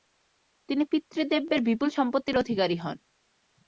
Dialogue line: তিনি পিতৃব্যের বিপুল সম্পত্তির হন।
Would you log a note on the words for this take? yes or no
yes